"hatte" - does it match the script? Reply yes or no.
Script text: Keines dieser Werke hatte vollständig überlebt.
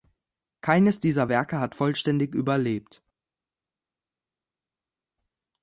no